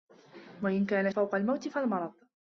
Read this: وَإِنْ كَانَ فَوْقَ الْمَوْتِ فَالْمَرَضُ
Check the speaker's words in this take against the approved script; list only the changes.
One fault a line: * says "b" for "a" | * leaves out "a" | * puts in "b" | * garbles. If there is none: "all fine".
all fine